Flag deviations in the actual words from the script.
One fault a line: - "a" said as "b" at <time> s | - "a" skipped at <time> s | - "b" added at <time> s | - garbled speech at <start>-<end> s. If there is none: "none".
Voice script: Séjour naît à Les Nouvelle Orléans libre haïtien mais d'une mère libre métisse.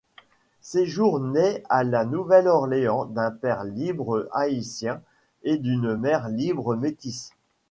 - "Les" said as "La" at 1.8 s
- "d'un père" added at 3.0 s
- "mais" said as "et" at 5.4 s